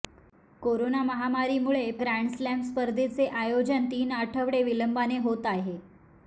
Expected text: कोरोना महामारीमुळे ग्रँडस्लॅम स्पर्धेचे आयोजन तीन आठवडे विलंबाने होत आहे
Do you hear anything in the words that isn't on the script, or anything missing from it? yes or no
no